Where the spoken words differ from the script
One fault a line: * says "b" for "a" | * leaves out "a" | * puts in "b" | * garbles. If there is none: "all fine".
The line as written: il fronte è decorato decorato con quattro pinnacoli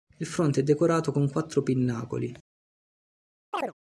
* leaves out "decorato"